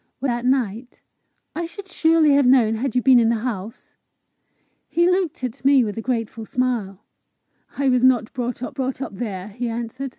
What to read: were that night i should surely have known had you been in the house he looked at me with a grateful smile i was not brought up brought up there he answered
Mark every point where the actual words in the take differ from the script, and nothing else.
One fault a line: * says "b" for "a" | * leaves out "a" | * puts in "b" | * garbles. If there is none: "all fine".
all fine